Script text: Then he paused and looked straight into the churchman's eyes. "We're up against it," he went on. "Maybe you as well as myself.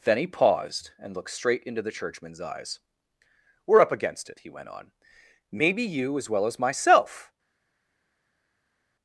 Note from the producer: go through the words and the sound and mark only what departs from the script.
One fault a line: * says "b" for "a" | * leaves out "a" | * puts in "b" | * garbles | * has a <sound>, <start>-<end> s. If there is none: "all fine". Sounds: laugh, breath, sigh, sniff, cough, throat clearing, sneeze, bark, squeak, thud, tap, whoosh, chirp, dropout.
all fine